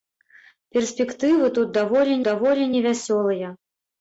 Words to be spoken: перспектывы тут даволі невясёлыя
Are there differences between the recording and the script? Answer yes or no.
yes